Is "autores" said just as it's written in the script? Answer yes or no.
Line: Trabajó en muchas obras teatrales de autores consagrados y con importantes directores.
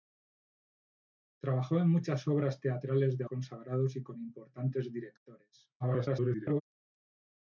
no